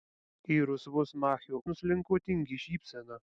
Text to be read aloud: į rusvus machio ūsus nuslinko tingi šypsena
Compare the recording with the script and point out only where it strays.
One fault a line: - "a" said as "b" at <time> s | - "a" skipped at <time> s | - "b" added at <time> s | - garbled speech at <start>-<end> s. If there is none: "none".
- "ūsus" skipped at 1.6 s